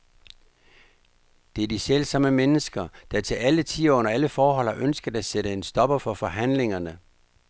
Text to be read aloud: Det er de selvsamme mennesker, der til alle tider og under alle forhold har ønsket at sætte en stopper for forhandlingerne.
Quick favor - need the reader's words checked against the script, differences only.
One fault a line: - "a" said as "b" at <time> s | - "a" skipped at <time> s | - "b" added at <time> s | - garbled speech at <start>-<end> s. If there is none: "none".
none